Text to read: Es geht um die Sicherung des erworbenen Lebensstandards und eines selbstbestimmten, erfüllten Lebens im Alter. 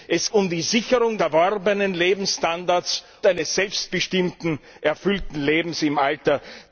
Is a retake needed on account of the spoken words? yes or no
yes